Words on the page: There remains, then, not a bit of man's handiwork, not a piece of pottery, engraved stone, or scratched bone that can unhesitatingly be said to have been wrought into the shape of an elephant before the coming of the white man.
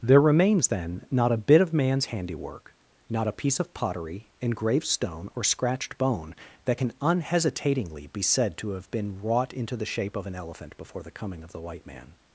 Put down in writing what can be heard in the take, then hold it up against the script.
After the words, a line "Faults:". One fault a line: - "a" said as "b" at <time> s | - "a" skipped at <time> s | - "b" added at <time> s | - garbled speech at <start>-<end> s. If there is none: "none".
There remains, then, not a bit of man's handiwork, not a piece of pottery, engraved stone, or scratched bone that can unhesitatingly be said to have been wrought into the shape of an elephant before the coming of the white man.
Faults:
none